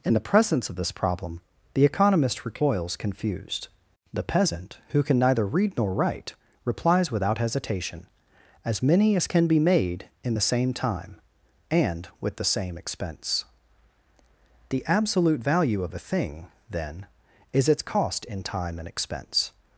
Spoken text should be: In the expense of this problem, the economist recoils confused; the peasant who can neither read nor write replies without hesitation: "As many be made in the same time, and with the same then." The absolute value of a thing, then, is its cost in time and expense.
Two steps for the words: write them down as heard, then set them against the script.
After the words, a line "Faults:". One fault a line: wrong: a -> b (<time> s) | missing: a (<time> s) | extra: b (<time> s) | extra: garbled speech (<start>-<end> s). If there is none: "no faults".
In the presence of this problem, the economist recoils confused; the peasant who can neither read nor write replies without hesitation: "As many as can be made in the same time, and with the same expense." The absolute value of a thing, then, is its cost in time and expense.
Faults:
wrong: expense -> presence (0.3 s)
extra: as can (9.2 s)
wrong: then -> expense (12.8 s)